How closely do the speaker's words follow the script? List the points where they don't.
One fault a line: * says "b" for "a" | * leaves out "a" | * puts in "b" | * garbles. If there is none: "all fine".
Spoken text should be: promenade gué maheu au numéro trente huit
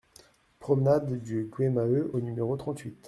* puts in "du"